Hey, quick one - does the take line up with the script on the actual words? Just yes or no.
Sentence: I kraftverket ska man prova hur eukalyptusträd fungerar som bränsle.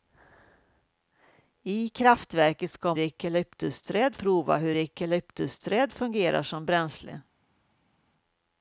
no